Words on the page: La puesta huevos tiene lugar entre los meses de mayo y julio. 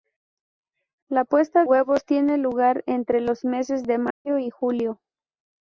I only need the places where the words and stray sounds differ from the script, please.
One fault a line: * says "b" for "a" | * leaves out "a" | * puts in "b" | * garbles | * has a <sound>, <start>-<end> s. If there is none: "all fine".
* has a dropout, 4.1-4.3 s